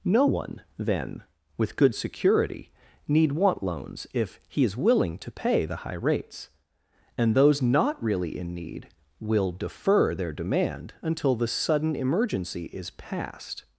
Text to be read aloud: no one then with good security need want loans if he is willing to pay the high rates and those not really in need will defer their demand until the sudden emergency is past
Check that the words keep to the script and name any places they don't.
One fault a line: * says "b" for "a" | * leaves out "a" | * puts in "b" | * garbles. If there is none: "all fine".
all fine